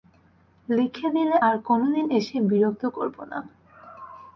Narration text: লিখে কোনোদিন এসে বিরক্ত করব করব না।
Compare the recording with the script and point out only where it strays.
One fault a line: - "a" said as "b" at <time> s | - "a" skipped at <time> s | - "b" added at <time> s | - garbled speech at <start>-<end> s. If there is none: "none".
- "দিলে আর" added at 1.1 s
- "করব" skipped at 3.2 s